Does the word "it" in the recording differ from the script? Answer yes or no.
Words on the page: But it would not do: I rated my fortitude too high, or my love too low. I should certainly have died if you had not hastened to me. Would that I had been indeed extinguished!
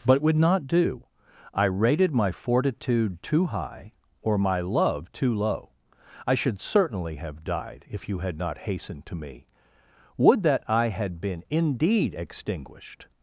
yes